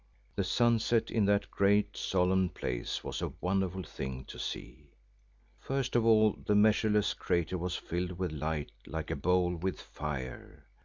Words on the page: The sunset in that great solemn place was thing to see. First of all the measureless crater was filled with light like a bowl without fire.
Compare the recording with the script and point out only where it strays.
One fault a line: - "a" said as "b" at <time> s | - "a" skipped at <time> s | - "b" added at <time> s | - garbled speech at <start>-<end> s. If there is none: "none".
- "a wonderful" added at 3.2 s
- "without" said as "with" at 9.6 s